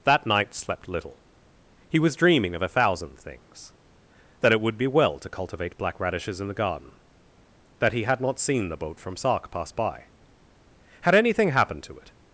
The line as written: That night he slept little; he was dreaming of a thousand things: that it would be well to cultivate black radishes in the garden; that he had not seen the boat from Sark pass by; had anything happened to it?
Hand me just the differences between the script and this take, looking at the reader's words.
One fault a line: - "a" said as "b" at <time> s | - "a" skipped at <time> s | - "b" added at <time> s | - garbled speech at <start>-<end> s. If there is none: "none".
- "he" skipped at 0.5 s